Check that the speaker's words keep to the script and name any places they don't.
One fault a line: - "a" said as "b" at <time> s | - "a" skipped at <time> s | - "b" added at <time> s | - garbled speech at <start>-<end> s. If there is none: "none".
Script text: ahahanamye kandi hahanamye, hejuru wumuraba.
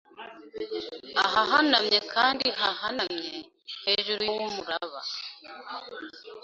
none